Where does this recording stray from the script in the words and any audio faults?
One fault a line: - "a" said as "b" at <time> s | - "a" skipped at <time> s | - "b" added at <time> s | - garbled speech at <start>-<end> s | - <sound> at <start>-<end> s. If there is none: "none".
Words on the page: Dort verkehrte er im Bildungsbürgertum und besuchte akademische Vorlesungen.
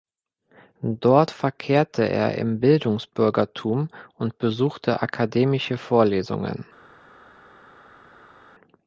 none